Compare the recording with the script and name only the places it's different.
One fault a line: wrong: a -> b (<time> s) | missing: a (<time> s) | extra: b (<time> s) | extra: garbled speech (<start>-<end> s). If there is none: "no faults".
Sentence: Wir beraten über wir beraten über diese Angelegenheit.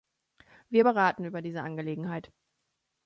missing: wir beraten über (1.4 s)